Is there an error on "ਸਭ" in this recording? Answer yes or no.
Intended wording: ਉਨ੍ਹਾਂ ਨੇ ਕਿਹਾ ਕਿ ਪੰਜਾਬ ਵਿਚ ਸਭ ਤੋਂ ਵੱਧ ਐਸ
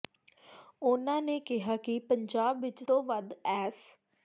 yes